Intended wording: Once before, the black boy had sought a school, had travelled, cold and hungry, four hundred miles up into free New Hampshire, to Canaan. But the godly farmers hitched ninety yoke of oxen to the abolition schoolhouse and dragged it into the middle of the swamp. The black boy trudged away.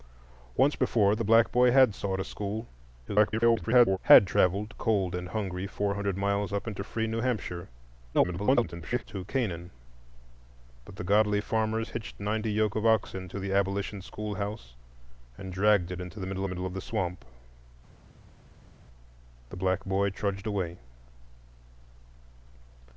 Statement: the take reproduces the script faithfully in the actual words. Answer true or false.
false